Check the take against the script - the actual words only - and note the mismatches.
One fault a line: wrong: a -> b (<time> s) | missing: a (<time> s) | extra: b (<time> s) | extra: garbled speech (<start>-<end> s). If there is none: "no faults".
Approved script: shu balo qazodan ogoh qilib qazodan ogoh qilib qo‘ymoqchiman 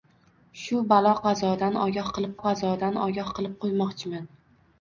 no faults